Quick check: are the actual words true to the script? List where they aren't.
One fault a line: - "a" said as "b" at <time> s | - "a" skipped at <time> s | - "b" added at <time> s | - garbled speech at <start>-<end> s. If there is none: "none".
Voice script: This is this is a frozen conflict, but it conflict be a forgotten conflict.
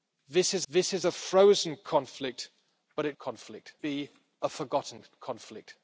none